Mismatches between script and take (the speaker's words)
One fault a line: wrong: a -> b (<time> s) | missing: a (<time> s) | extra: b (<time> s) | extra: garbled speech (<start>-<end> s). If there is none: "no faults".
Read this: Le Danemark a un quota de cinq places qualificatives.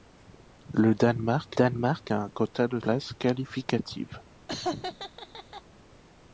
extra: Danemark (1.5 s)
missing: cinq (2.8 s)